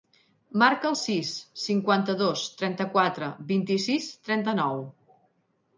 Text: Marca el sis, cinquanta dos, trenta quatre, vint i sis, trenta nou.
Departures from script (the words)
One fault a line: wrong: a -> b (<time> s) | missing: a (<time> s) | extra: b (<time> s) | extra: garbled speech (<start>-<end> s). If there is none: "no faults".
no faults